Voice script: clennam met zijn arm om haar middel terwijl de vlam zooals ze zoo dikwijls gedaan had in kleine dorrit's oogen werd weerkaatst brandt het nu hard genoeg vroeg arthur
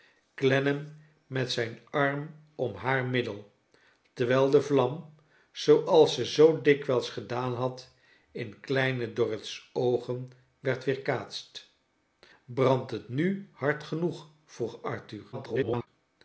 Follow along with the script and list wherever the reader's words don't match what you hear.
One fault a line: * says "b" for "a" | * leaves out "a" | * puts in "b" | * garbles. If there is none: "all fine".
* garbles